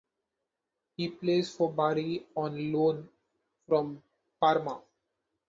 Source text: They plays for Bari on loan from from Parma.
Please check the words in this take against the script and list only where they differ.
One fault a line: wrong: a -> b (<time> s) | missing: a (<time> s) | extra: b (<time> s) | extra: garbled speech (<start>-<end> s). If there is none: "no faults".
wrong: They -> He (1.0 s)
missing: from (4.0 s)